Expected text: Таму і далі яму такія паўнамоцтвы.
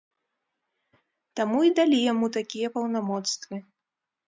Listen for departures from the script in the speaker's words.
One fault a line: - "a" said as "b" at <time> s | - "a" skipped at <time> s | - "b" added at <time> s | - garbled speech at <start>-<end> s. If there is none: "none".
none